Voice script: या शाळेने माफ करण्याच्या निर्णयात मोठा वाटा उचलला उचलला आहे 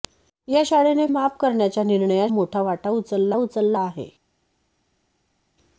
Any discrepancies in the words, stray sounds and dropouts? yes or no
no